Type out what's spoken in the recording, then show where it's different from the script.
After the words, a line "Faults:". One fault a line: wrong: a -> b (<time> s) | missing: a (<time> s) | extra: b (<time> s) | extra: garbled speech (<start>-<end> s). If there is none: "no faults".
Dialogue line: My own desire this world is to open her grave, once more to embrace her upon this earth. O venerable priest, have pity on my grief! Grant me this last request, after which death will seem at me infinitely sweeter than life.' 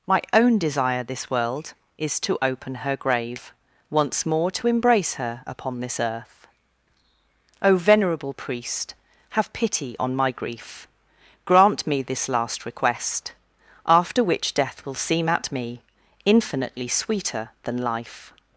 My own desire this world is to open her grave, once more to embrace her upon this earth. O venerable priest, have pity on my grief! Grant me this last request, after which death will seem at me infinitely sweeter than life.'
Faults:
no faults